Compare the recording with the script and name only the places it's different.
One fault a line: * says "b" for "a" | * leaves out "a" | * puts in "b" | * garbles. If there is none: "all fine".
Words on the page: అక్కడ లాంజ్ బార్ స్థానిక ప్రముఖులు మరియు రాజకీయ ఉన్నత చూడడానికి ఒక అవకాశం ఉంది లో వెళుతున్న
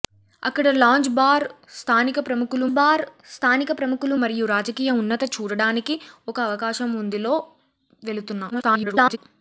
* puts in "బార్ స్థానిక ప్రముఖులు"
* garbles